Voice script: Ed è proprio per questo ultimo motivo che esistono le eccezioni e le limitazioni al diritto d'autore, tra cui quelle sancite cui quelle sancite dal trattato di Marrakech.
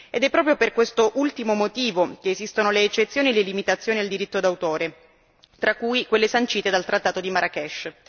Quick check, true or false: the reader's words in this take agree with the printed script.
false